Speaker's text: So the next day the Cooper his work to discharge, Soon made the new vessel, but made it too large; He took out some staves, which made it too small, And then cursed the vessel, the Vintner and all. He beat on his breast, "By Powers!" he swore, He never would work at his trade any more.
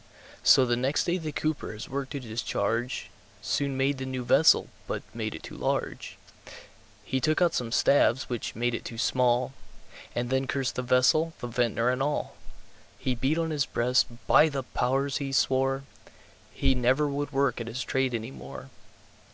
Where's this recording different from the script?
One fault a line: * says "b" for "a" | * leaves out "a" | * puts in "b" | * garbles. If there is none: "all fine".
* puts in "the"